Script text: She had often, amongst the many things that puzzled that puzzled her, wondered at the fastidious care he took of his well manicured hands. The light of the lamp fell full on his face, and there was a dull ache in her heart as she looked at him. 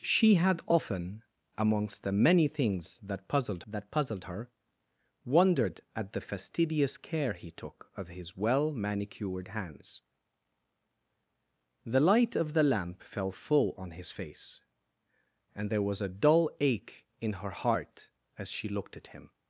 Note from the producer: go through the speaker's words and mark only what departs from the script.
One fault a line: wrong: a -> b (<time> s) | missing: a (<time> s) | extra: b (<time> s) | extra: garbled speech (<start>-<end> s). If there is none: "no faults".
no faults